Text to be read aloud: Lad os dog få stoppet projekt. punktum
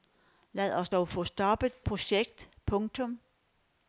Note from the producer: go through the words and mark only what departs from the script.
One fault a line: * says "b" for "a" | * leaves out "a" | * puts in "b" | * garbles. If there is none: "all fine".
all fine